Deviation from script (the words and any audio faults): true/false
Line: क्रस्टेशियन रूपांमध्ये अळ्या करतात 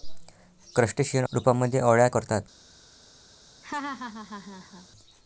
true